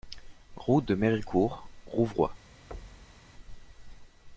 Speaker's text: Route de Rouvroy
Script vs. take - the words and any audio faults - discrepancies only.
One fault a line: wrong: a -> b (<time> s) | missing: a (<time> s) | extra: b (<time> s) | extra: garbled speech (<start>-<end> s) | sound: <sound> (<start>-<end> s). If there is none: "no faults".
extra: Méricourt (0.9 s)
sound: thud (2.7-3.3 s)